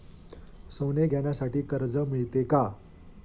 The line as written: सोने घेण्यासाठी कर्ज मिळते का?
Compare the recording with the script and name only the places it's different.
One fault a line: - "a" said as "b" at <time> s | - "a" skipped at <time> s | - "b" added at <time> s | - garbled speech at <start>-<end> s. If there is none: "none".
none